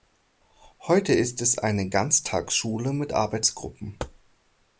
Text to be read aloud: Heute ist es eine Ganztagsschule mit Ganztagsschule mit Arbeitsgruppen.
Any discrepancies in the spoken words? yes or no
yes